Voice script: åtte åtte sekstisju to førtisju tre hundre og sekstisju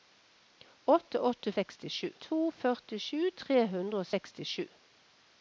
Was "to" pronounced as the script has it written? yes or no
yes